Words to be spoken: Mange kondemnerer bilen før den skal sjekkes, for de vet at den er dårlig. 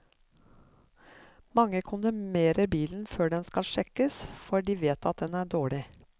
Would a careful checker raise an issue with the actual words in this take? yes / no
no